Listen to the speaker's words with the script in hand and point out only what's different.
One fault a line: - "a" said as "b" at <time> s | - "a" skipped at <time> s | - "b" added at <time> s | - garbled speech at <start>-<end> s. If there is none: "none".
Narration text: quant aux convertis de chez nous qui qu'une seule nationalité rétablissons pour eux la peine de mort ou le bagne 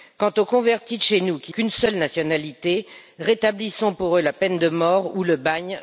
none